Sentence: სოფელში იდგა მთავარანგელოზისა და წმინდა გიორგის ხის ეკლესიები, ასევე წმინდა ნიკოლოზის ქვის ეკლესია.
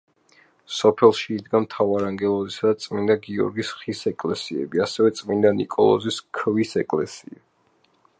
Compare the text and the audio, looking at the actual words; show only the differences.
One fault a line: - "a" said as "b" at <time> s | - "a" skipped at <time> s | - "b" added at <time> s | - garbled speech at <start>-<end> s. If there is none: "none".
none